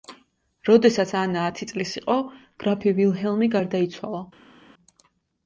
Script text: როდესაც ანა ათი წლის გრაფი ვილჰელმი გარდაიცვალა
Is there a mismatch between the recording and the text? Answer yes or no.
yes